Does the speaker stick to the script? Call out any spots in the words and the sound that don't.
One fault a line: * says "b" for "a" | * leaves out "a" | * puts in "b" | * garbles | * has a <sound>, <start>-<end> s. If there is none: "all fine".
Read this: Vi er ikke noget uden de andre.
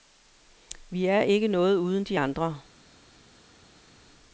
all fine